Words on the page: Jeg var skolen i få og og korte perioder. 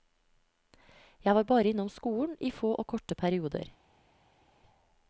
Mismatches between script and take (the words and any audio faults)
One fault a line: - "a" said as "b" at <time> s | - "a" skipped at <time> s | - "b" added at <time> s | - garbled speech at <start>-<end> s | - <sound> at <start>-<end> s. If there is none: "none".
- "bare innom" added at 1.4 s
- "og" skipped at 2.9 s